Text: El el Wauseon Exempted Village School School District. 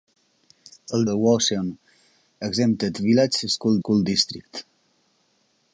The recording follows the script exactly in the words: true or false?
true